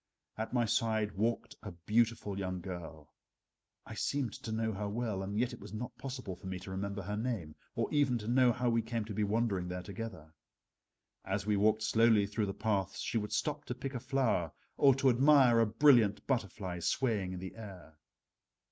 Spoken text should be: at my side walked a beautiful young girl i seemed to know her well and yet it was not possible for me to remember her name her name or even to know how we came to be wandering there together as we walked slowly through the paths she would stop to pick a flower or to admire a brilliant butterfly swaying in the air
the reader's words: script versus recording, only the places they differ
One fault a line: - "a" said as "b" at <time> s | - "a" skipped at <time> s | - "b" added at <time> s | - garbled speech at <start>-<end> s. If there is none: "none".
- "her name" skipped at 7.5 s